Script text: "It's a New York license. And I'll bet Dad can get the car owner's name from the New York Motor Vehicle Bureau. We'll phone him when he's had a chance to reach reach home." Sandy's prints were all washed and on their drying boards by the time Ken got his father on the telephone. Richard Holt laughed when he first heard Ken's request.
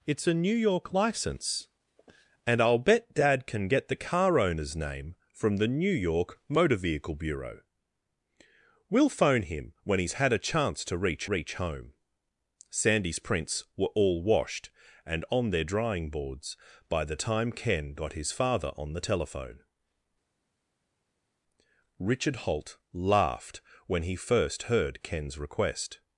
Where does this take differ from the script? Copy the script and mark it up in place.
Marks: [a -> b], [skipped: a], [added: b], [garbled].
"It's a New York license. And I'll bet Dad can get the car owner's name from the New York Motor Vehicle Bureau. We'll phone him when he's had a chance to reach reach home." Sandy's prints were all washed and on their drying boards by the time Ken got his father on the telephone. Richard Holt laughed when he first heard Ken's request.